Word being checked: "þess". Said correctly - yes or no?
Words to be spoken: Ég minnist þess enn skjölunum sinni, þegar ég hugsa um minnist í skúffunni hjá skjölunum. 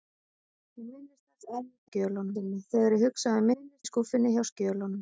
yes